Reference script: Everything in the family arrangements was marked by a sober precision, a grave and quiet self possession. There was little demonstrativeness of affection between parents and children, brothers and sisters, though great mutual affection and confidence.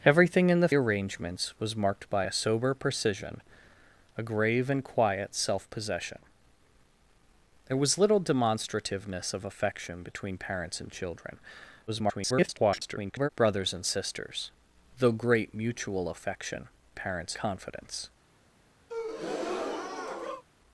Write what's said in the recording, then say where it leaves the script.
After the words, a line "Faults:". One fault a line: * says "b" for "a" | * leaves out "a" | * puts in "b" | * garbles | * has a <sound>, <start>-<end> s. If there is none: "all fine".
Everything in the arrangements was marked by a sober precision, a grave and quiet self possession. There was little demonstrativeness of affection between parents and children, [garbled] brothers and sisters, though great mutual affection parents confidence.
Faults:
* leaves out "family"
* garbles
* says "parents" for "and"
* has a breath, 18.9-20.4 s